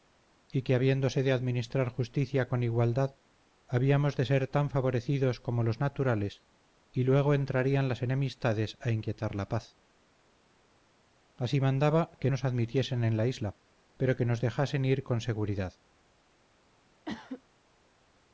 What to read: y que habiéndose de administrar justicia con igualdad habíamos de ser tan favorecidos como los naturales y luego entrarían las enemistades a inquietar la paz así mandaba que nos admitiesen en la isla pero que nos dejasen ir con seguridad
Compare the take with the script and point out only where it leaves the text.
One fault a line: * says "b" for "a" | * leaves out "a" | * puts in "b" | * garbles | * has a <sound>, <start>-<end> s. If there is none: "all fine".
* has a cough, 17.0-17.4 s